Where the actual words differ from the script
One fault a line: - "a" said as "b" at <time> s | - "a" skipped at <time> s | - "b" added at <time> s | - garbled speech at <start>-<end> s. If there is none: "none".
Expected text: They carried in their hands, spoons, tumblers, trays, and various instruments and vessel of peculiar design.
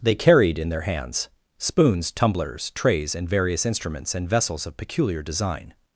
- "vessel" said as "vessels" at 4.3 s